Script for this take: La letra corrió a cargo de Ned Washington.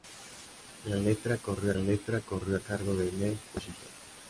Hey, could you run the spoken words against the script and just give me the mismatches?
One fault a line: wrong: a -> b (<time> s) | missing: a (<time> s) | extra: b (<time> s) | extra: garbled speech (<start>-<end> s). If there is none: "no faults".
extra: letra corrió (1.8 s)